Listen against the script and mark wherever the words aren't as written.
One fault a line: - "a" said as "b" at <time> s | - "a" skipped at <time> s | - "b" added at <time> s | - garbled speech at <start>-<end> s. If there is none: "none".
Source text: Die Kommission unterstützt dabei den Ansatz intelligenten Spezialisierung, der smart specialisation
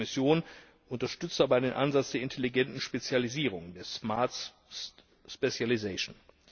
- "der" added at 2.1 s